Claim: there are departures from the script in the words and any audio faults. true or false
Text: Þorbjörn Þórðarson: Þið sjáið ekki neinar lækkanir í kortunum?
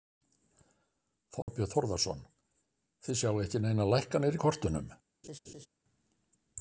true